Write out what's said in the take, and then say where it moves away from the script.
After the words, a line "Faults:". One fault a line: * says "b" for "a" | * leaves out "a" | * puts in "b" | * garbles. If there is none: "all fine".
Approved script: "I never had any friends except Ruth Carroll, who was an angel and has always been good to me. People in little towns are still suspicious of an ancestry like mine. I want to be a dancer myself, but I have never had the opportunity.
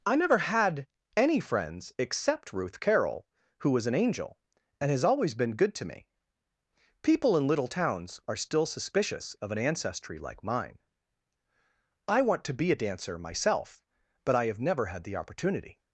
"I never had any friends except Ruth Carroll, who was an angel and has always been good to me. People in little towns are still suspicious of an ancestry like mine. I want to be a dancer myself, but I have never had the opportunity.
Faults:
all fine